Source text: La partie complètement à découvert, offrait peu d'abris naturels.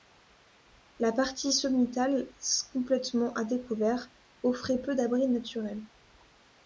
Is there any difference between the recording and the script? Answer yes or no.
yes